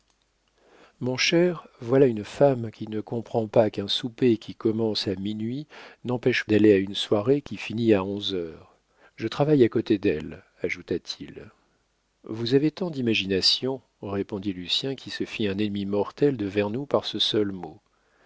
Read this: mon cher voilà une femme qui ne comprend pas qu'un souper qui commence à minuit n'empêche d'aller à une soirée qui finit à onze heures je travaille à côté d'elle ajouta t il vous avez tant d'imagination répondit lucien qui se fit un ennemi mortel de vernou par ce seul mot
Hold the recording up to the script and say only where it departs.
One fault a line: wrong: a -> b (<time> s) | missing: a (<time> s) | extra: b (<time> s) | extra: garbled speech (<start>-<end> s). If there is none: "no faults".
no faults